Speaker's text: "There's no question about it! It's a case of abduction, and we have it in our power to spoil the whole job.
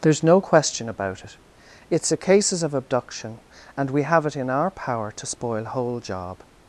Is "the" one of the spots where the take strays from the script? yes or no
yes